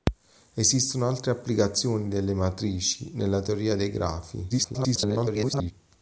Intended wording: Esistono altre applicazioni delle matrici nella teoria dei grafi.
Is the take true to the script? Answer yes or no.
no